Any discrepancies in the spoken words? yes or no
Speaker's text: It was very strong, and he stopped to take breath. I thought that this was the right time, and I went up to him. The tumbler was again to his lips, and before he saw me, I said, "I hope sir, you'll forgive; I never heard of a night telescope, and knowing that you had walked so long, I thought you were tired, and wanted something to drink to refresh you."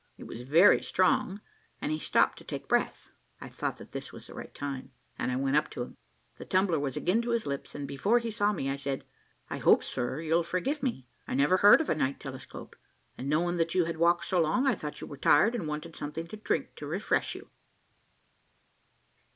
yes